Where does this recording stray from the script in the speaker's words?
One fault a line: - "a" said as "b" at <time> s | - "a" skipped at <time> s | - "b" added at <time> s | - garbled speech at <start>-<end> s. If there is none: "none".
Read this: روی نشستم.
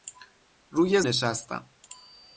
none